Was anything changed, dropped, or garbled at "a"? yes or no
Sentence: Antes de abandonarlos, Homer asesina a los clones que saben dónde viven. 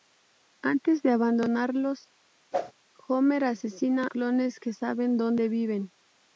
yes